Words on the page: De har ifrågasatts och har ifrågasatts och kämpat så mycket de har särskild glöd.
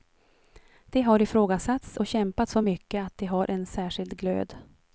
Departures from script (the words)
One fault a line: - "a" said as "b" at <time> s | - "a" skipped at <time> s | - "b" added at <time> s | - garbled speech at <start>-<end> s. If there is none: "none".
- "har ifrågasatts och" skipped at 2.1 s
- "att" added at 3.1 s
- "en" added at 3.5 s